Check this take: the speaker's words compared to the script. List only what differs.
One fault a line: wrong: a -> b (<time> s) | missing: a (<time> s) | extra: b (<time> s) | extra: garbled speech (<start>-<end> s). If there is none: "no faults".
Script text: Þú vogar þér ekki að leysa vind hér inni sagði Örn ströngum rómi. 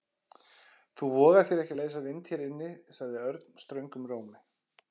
no faults